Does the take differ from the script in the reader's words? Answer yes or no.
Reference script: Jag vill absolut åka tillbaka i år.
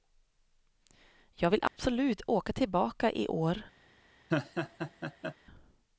no